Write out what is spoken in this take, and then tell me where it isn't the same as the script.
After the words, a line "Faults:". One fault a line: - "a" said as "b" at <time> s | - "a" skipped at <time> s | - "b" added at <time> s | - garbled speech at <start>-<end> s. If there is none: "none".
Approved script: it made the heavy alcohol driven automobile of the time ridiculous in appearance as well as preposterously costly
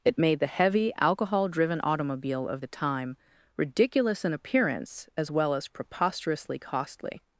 it made the heavy alcohol driven automobile of the time ridiculous in appearance as well as preposterously costly
Faults:
none